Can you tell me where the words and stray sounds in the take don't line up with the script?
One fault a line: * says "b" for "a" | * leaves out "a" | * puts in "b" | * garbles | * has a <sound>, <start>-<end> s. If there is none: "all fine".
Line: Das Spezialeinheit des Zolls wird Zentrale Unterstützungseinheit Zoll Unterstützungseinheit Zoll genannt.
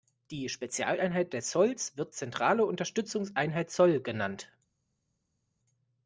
* says "Die" for "Das"
* leaves out "Unterstützungseinheit Zoll"